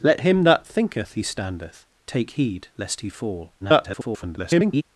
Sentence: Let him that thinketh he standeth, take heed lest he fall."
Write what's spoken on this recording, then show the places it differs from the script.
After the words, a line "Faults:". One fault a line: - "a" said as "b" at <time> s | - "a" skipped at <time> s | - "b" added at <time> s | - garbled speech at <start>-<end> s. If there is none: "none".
Let him that thinketh he standeth, take heed lest he fall." [garbled]
Faults:
- garbled speech at 3.6-4.8 s